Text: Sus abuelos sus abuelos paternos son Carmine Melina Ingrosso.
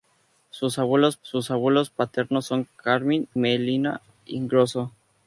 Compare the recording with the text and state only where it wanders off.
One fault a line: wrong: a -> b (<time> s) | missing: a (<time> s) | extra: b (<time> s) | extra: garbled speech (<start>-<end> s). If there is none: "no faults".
no faults